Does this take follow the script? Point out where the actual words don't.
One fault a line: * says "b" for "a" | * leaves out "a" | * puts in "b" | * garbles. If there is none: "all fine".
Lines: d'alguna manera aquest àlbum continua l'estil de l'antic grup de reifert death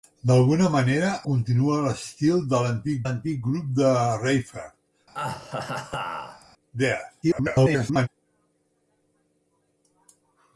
* leaves out "aquest àlbum"
* puts in "l'antic"
* garbles